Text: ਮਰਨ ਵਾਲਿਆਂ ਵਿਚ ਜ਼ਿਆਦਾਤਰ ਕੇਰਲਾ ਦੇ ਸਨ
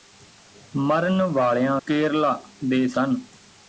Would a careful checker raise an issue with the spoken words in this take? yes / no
yes